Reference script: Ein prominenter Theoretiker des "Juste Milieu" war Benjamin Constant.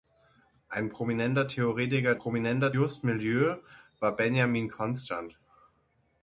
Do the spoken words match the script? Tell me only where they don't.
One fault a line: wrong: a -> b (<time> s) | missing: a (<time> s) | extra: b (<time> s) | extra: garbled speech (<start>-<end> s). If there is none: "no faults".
wrong: des -> prominenter (2.1 s)